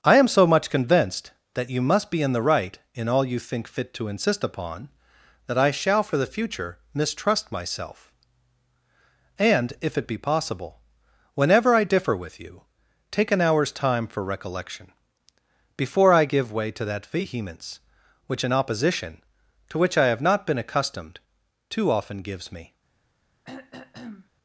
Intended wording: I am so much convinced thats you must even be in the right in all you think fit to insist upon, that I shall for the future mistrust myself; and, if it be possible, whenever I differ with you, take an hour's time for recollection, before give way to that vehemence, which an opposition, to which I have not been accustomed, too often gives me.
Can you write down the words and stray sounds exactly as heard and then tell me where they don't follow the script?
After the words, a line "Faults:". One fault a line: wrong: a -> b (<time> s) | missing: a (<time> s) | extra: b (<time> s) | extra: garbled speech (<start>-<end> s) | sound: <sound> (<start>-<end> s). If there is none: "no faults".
I am so much convinced that you must be in the right in all you think fit to insist upon, that I shall for the future mistrust myself; and, if it be possible, whenever I differ with you, take an hour's time for recollection, before I give way to that vehemence, which an opposition, to which I have not been accustomed, too often gives me.
Faults:
wrong: thats -> that (1.6 s)
missing: even (2.1 s)
extra: I (16.1 s)
sound: throat clearing (23.4-24.3 s)